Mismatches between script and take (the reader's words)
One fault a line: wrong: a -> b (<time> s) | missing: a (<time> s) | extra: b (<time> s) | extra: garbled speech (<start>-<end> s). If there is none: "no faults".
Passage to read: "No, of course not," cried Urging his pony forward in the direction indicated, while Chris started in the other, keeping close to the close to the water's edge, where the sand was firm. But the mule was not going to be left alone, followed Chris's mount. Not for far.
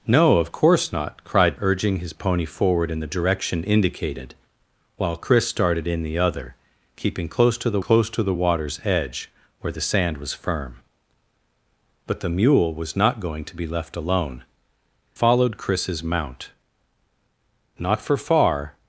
no faults